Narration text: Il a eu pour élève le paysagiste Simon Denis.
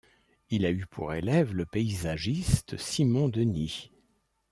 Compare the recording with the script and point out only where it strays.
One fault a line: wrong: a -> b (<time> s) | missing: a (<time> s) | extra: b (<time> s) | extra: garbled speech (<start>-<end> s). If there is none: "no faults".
no faults